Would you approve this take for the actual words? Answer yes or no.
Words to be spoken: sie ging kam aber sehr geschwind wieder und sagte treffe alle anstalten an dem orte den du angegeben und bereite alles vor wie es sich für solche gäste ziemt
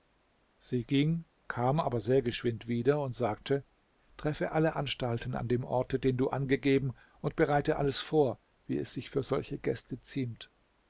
yes